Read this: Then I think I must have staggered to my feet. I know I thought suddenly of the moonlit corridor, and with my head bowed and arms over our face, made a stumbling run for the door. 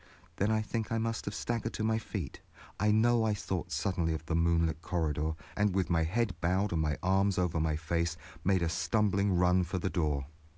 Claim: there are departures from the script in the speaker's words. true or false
true